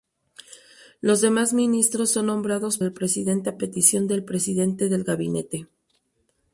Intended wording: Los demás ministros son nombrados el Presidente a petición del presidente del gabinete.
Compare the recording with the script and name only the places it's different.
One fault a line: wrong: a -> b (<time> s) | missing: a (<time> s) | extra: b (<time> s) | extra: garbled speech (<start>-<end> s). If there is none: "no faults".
no faults